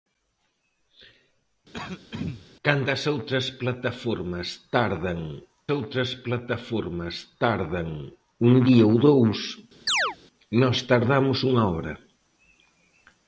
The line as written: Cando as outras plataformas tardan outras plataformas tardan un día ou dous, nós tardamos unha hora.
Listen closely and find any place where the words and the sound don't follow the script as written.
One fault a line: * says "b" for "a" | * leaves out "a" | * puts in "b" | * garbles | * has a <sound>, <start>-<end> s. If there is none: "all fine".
* has a throat clearing, 1.7-2.5 s
* has a chirp, 9.9-10.2 s